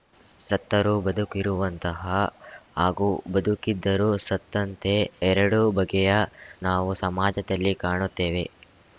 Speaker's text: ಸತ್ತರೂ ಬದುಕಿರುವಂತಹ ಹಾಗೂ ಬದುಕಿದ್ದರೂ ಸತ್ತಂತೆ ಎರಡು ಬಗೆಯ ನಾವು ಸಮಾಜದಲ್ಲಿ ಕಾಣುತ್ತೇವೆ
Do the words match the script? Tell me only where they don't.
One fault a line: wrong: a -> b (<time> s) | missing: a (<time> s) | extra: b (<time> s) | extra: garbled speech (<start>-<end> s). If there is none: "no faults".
no faults